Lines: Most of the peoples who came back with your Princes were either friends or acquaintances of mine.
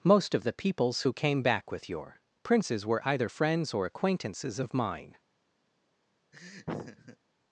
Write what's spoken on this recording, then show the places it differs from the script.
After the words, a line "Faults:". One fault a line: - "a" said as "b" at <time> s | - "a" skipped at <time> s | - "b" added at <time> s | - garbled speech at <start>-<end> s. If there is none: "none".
Most of the peoples who came back with your Princes were either friends or acquaintances of mine.
Faults:
none